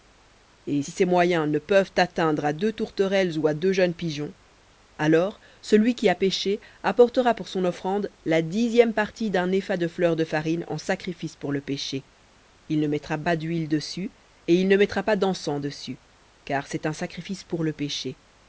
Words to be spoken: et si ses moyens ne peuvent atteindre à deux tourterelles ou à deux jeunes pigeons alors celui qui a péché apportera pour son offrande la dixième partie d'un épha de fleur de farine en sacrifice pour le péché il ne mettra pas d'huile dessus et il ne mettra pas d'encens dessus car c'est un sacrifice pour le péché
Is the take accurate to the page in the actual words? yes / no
yes